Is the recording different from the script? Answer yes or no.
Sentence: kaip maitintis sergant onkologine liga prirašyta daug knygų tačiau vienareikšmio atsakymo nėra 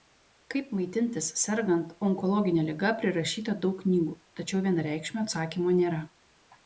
no